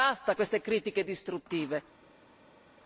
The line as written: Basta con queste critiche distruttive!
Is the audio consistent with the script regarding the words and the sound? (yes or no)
no